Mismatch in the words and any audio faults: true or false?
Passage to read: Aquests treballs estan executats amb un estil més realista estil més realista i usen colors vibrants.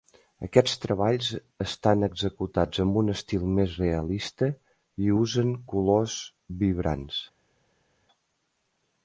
true